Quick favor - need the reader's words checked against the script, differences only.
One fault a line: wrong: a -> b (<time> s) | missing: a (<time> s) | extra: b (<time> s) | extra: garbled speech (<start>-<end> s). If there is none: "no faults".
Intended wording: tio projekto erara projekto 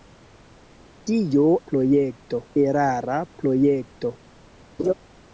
no faults